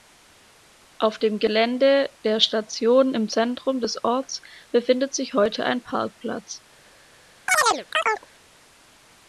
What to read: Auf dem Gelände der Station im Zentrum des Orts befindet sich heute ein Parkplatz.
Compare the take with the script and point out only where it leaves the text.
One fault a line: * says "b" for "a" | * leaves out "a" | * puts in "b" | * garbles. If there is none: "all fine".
all fine